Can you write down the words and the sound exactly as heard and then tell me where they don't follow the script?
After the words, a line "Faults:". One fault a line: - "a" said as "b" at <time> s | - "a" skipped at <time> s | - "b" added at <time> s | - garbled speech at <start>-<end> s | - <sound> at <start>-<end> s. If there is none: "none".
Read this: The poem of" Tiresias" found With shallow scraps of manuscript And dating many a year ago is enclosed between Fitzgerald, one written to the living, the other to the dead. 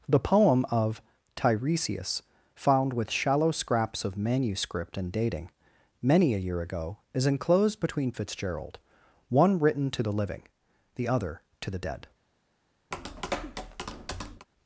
The poem of" Tiresias" found With shallow scraps of manuscript And dating many a year ago is enclosed between Fitzgerald, one written to the living, the other to the dead.
Faults:
- tap at 12.9-14.5 s